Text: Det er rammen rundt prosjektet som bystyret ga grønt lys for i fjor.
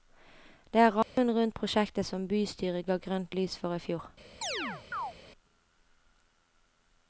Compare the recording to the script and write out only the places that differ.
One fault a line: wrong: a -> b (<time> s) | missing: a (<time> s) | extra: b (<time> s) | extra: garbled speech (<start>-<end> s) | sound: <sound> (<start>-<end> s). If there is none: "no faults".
sound: dropout (1.0-1.2 s)
sound: chirp (4.4-5.1 s)